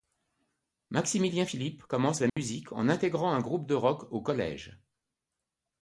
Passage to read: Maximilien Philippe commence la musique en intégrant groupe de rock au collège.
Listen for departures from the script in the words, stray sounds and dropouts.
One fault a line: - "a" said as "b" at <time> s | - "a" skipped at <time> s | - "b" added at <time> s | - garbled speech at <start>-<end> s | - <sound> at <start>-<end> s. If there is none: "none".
- dropout at 2.3-2.4 s
- "un" added at 3.3 s